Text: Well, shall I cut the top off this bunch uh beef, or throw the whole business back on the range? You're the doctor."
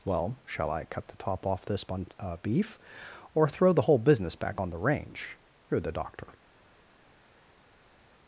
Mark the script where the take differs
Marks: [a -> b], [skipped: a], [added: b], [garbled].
Well, shall I cut the top off this [bunch -> bun] uh beef, or throw the whole business back on the range? You're the doctor."